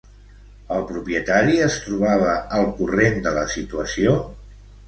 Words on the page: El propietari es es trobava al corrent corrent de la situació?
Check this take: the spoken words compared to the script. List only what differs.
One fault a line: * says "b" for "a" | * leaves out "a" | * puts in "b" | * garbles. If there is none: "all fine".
* leaves out "es"
* leaves out "corrent"